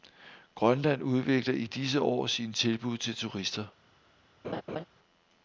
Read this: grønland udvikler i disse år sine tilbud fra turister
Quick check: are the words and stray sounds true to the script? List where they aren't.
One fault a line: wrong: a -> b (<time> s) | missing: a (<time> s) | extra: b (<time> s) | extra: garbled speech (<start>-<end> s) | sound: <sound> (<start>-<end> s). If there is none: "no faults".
wrong: fra -> til (3.0 s)
sound: laugh (4.4-4.8 s)